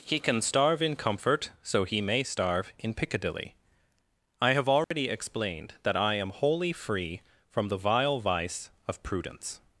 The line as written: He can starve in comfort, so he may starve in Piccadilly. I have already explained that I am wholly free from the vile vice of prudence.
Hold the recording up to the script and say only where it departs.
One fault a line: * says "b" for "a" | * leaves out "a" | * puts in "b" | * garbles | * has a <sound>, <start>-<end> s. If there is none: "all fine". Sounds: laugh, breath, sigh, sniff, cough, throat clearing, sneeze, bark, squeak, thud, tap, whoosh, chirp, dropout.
* has a dropout, 4.8-4.9 s